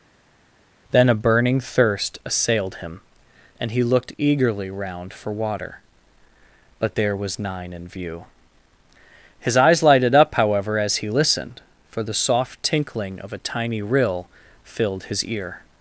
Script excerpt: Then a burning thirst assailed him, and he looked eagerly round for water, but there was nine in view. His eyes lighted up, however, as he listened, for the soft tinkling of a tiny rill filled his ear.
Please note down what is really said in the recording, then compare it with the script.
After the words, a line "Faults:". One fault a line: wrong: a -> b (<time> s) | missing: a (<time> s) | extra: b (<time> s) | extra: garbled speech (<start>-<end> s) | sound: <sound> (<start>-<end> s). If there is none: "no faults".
Then a burning thirst assailed him, and he looked eagerly round for water, but there was nine in view. His eyes lighted up, however, as he listened, for the soft tinkling of a tiny rill filled his ear.
Faults:
no faults